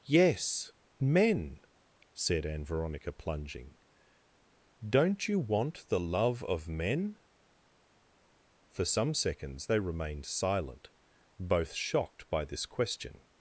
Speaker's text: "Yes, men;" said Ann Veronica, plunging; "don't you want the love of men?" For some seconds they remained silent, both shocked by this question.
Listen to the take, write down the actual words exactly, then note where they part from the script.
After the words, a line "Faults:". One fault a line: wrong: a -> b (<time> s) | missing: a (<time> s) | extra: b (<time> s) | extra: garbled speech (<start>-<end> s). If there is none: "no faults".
"Yes, men;" said Ann Veronica, plunging; "don't you want the love of men?" For some seconds they remained silent, both shocked by this question.
Faults:
no faults